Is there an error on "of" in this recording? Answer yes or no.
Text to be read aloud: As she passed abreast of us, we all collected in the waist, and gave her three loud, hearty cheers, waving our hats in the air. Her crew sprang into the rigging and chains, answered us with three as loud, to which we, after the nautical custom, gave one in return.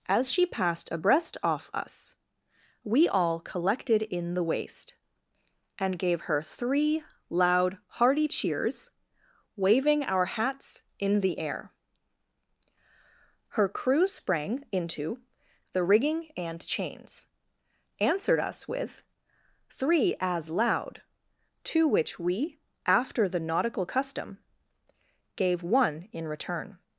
yes